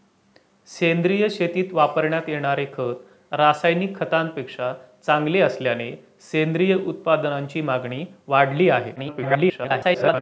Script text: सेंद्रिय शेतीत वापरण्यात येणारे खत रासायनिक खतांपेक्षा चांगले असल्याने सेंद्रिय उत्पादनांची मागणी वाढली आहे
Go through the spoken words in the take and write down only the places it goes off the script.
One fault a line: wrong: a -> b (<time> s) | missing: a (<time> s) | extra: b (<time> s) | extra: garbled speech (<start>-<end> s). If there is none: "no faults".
extra: garbled speech (9.0-10.2 s)